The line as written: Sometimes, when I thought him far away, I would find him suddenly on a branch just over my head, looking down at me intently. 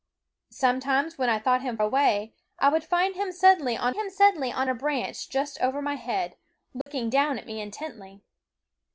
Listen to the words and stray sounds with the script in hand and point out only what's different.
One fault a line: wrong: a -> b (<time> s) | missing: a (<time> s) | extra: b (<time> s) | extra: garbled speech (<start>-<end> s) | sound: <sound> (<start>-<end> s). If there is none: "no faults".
missing: far (1.8 s)
extra: him suddenly on (3.9 s)
sound: dropout (6.8-6.9 s)